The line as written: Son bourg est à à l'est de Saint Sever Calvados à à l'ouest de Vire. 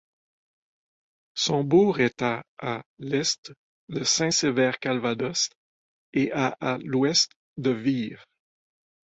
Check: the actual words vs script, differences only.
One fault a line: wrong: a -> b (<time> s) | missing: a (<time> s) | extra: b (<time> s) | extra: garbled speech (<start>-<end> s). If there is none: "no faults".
extra: et (6.1 s)